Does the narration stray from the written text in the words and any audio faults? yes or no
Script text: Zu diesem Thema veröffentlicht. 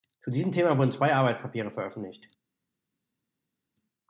yes